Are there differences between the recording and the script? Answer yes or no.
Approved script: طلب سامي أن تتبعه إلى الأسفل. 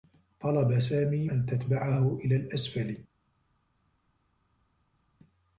no